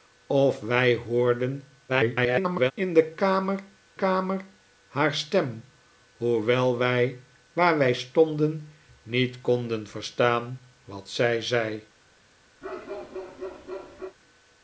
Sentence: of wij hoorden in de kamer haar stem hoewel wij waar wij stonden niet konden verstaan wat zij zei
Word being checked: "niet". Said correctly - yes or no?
yes